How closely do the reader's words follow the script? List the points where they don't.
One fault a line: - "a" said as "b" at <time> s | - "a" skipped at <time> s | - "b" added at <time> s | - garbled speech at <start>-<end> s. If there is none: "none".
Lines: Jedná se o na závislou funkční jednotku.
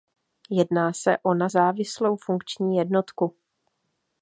none